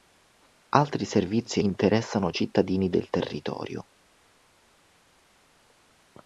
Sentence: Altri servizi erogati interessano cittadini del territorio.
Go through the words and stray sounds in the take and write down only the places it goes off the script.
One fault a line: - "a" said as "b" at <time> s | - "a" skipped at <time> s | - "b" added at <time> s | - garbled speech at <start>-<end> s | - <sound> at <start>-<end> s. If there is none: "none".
- "erogati" skipped at 1.6 s